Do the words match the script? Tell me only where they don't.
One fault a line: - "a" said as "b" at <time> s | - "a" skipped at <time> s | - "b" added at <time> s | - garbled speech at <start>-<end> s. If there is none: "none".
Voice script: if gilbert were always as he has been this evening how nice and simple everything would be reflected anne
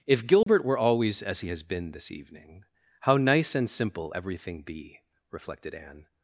- "would" skipped at 4.6 s